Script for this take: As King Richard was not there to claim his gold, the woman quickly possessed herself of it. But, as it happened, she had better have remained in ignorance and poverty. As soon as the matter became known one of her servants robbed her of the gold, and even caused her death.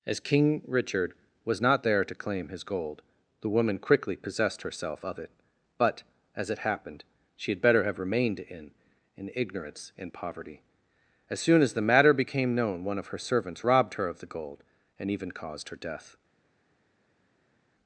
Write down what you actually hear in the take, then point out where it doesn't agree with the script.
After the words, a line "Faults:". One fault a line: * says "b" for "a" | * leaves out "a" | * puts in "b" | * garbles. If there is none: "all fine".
As King Richard was not there to claim his gold, the woman quickly possessed herself of it. But, as it happened, she had better have remained in in ignorance and poverty. As soon as the matter became known one of her servants robbed her of the gold, and even caused her death.
Faults:
* puts in "in"